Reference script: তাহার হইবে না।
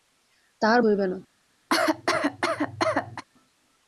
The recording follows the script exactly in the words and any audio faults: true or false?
false